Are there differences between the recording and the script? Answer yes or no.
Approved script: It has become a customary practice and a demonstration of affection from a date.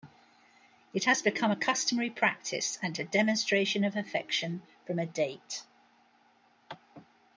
no